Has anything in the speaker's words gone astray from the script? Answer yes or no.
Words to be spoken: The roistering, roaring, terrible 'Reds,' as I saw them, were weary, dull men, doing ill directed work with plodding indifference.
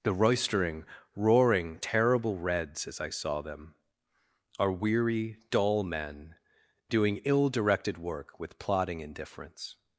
yes